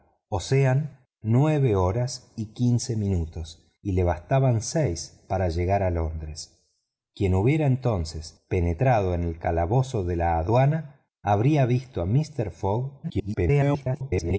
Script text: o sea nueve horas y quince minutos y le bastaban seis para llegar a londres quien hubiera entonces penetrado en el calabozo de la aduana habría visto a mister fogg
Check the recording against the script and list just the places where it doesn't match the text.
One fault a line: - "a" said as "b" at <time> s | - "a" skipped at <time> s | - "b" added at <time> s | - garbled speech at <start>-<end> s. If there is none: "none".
- garbled speech at 13.0-14.4 s